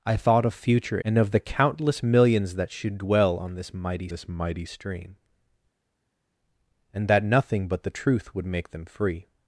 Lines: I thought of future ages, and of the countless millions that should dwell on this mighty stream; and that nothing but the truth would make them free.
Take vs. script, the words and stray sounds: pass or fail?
fail